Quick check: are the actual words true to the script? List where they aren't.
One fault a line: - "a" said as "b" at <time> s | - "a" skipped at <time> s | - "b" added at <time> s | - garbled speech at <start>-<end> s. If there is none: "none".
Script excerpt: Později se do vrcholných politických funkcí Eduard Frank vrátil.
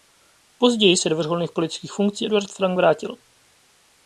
none